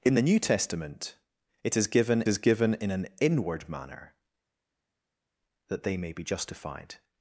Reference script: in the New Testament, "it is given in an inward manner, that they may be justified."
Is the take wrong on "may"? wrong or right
right